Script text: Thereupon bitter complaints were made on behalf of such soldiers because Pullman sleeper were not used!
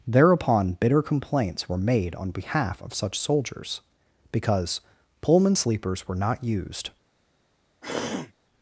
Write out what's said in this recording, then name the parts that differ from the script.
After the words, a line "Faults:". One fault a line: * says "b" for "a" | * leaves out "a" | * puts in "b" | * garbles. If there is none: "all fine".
Thereupon bitter complaints were made on behalf of such soldiers because Pullman sleepers were not used!
Faults:
* says "sleepers" for "sleeper"